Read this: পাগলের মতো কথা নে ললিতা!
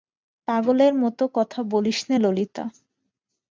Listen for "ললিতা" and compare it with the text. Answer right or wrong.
right